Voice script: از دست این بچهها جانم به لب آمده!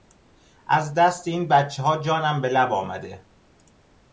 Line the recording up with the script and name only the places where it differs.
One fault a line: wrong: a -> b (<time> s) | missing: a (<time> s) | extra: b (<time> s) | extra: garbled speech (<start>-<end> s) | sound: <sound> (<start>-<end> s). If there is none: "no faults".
no faults